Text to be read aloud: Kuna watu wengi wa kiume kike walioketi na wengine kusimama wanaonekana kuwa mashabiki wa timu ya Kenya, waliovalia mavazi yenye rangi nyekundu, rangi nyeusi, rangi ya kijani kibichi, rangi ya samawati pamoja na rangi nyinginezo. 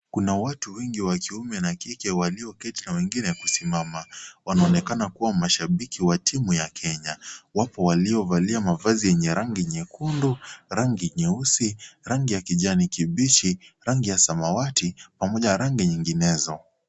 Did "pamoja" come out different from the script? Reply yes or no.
no